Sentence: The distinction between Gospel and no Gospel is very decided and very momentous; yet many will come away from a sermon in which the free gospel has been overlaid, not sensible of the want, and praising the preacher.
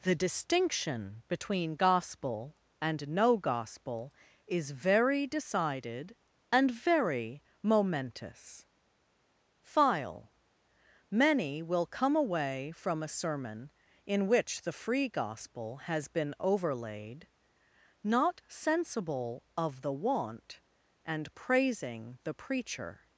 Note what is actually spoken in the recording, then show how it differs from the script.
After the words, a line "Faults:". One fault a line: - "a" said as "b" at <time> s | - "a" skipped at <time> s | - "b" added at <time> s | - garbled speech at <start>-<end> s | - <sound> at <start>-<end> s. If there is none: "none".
The distinction between Gospel and no Gospel is very decided and very momentous; file many will come away from a sermon in which the free gospel has been overlaid, not sensible of the want, and praising the preacher.
Faults:
- "yet" said as "file" at 9.6 s